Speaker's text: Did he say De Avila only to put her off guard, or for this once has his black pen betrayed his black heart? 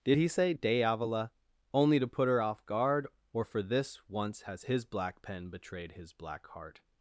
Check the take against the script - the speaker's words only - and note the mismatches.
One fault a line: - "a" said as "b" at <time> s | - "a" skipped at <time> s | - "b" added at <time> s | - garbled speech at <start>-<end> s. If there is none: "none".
none